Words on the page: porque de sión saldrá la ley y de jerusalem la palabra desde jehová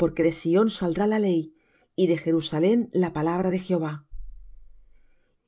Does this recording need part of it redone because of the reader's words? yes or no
yes